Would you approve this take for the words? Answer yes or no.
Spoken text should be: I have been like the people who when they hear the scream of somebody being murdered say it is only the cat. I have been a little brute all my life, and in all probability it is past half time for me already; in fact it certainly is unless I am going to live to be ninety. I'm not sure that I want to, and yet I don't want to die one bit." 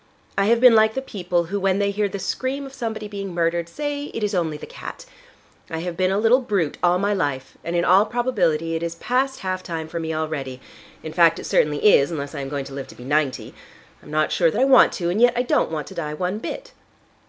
yes